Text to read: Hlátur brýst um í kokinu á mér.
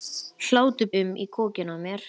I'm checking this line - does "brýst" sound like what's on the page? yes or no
no